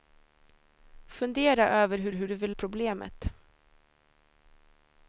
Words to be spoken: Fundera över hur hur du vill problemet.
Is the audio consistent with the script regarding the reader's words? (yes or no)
yes